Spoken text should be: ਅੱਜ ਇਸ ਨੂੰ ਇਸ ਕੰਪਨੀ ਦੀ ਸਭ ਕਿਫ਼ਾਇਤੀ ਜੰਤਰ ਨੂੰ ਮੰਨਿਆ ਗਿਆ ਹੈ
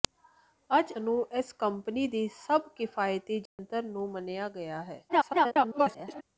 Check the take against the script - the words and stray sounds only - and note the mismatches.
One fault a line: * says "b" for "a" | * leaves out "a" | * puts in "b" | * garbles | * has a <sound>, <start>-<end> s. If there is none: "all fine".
* leaves out "ਇਸ"
* has a dropout, 3.5-3.6 s
* garbles